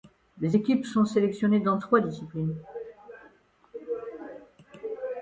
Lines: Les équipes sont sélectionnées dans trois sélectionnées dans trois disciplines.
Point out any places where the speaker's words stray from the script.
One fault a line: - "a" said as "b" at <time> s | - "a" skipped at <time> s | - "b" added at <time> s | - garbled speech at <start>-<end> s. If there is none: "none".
- "sélectionnées dans trois" skipped at 2.0 s